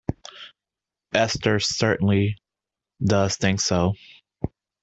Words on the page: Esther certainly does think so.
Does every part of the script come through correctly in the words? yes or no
yes